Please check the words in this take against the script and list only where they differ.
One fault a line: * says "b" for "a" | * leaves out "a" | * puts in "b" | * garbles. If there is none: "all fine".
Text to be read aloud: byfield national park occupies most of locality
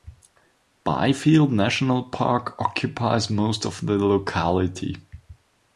* puts in "the"